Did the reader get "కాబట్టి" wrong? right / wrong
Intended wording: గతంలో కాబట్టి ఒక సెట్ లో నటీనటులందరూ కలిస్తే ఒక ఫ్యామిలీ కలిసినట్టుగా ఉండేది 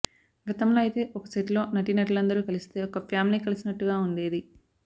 wrong